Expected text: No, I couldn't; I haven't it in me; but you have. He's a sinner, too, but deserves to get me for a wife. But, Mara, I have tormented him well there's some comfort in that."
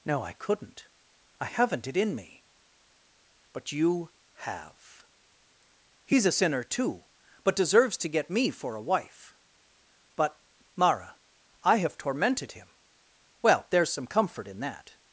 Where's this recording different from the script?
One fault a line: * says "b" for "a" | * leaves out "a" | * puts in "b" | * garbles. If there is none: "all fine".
all fine